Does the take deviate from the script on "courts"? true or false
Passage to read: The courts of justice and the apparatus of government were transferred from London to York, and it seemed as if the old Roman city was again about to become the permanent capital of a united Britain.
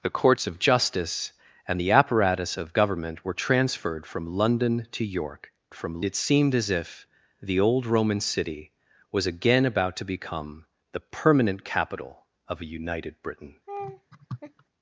false